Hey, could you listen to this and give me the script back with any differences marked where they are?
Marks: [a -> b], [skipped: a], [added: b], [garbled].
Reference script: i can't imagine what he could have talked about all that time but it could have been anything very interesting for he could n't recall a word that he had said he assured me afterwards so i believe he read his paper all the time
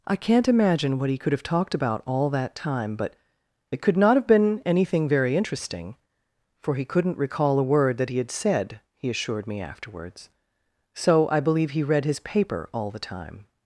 i can't imagine what he could have talked about all that time but it could [added: not] have been anything very interesting for he could n't recall a word that he had said he assured me afterwards so i believe he read his paper all the time